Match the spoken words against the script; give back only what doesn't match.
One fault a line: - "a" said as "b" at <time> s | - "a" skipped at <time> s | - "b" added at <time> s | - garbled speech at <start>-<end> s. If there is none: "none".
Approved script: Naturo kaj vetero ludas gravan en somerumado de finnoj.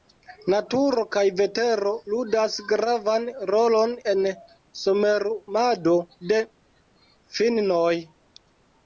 - "rolon" added at 3.5 s